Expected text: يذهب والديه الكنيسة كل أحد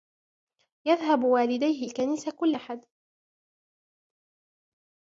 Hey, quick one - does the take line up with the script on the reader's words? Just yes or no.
yes